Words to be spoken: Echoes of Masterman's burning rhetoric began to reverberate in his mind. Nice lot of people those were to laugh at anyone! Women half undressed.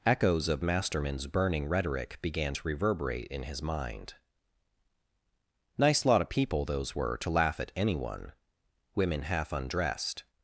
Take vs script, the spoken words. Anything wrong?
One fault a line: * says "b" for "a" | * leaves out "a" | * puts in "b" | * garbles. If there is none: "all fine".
all fine